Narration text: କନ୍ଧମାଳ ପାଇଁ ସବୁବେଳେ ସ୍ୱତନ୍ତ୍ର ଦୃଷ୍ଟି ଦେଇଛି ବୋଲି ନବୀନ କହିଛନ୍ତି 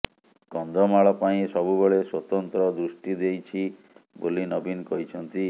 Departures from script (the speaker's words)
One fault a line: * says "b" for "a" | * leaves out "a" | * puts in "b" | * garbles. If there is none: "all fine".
all fine